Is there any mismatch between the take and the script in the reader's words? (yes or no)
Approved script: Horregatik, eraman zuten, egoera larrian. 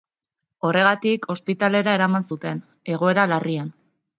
yes